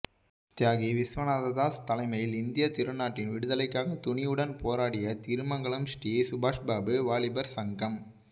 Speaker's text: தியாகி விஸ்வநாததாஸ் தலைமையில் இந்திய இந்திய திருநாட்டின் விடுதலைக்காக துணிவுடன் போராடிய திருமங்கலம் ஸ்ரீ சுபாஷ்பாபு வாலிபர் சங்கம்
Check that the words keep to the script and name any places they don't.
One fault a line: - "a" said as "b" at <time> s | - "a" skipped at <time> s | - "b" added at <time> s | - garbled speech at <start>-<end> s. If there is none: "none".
- "இந்திய" skipped at 2.7 s